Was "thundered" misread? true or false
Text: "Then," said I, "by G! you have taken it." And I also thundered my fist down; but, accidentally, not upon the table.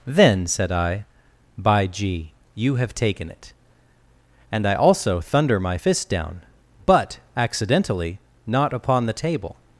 true